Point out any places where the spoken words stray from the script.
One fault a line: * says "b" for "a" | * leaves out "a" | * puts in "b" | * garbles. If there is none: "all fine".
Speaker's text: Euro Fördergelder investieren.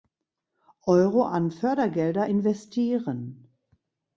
* puts in "an"